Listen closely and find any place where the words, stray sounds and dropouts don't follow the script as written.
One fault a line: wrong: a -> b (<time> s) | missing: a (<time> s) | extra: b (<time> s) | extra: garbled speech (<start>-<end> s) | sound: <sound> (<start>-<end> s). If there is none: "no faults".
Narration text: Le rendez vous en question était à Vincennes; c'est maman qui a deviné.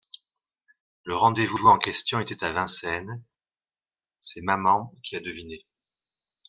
extra: vous (1.5 s)